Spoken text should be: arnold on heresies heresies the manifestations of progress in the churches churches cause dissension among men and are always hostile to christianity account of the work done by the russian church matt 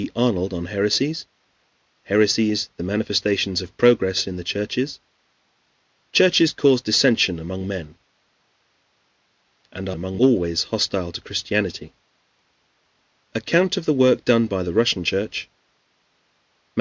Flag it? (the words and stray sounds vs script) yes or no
yes